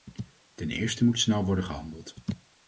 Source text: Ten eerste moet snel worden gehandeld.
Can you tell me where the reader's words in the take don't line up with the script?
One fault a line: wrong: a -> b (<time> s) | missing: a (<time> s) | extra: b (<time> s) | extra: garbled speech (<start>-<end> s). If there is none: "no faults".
no faults